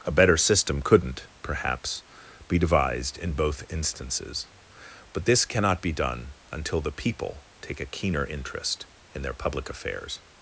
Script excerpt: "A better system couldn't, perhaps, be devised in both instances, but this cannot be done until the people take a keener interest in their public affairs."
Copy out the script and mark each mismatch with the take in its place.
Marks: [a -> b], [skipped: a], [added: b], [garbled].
"A better system couldn't, perhaps, be devised in both instances, but this cannot be done until the people take a keener interest in their public affairs."